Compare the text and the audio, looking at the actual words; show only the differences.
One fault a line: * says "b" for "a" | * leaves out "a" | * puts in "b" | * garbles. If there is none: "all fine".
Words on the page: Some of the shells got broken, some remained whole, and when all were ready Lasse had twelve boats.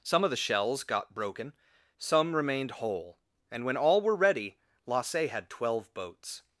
all fine